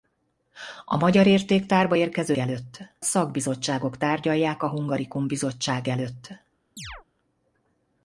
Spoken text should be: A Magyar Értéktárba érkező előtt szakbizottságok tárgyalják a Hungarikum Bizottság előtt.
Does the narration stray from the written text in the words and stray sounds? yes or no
yes